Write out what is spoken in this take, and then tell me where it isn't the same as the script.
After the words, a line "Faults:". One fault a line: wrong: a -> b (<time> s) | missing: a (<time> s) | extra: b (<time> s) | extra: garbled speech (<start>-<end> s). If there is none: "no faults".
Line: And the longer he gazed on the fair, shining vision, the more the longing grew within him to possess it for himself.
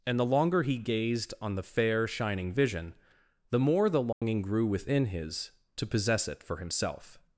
And the longer he gazed on the fair, shining vision, the more the longing grew within his to possess it for himself.
Faults:
wrong: him -> his (5.1 s)